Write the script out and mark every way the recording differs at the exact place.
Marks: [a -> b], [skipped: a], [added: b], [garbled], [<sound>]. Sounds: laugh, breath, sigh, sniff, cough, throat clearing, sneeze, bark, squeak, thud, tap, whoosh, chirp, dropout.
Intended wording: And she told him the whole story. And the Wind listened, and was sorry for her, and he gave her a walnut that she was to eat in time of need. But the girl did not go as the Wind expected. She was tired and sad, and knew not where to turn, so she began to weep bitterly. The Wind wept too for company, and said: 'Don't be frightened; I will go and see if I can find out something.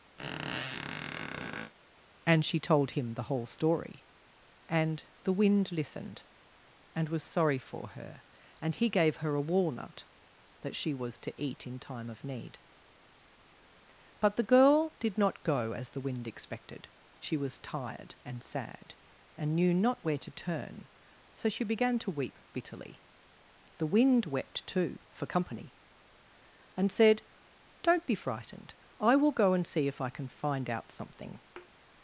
[squeak] And she told him the whole story. And the Wind listened, and was sorry for her, and he gave her a walnut that she was to eat in time of need. But the girl did not go as the Wind expected. She was tired and sad, and knew not where to turn, so she began to weep bitterly. The Wind wept too for company, and said: 'Don't be frightened; I will go and see if I can find out something. [thud]